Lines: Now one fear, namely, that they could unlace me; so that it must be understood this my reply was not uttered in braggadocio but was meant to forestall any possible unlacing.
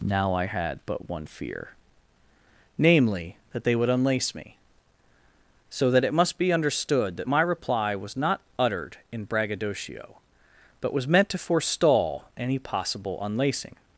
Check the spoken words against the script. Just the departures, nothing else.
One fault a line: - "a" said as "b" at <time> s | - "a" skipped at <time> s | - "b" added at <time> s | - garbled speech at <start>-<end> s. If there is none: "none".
- "I had but" added at 0.3 s
- "could" said as "would" at 3.8 s
- "this" said as "that" at 7.2 s